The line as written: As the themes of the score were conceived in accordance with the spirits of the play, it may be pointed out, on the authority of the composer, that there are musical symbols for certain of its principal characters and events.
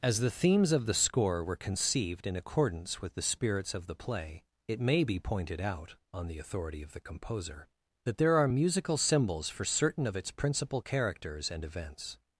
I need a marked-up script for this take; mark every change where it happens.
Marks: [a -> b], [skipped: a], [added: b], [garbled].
As the themes of the score were conceived in accordance with the spirits of the play, it may be pointed out, on the authority of the composer, that there are musical symbols for certain of its principal characters and events.